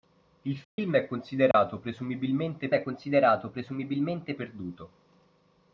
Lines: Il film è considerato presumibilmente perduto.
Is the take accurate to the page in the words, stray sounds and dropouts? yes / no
no